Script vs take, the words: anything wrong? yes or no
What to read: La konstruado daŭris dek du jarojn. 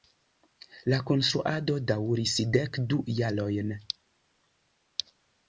no